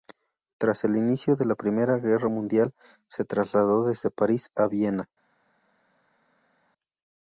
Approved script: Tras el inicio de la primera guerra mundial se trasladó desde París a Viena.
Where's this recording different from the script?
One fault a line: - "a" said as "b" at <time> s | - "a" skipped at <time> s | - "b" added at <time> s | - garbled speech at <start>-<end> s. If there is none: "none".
none